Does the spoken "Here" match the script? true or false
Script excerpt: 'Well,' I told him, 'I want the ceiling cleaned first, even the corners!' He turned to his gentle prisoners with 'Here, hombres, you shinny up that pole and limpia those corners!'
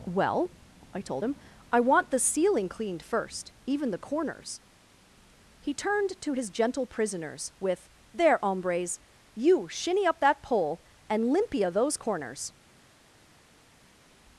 false